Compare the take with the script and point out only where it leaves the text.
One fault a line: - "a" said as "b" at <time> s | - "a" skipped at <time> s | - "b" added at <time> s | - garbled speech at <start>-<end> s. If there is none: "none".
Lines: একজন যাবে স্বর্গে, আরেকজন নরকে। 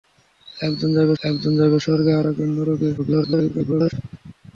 - "একজন যাবে" added at 1.2 s
- garbled speech at 3.0-3.9 s